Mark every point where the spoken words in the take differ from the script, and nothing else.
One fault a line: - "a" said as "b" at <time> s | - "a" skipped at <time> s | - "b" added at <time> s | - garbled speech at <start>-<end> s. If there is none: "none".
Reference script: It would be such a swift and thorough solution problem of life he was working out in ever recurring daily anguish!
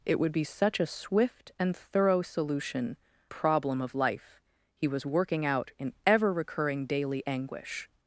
none